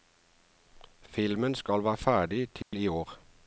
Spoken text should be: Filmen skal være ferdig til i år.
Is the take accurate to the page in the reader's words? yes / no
yes